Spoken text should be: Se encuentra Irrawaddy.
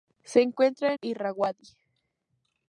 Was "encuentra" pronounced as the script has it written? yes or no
yes